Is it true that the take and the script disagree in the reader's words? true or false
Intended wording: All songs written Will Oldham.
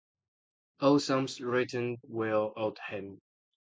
false